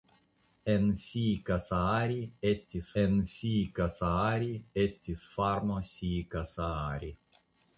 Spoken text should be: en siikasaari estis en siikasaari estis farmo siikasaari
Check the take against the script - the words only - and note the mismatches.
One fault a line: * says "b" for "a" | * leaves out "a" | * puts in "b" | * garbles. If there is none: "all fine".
all fine